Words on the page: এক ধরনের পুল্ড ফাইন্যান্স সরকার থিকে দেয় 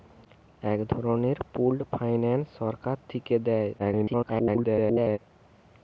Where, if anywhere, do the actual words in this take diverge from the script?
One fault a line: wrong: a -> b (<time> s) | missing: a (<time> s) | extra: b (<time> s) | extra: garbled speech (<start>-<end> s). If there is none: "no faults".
extra: garbled speech (3.8-5.2 s)